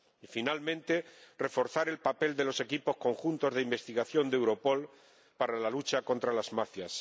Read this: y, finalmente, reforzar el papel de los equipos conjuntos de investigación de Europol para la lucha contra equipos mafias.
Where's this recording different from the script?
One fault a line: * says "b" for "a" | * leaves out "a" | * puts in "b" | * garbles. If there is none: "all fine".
* says "las" for "equipos"